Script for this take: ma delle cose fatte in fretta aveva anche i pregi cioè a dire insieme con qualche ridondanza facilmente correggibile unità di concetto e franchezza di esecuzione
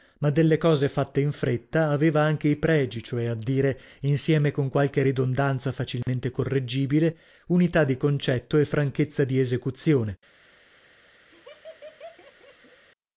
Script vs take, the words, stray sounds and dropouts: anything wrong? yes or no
yes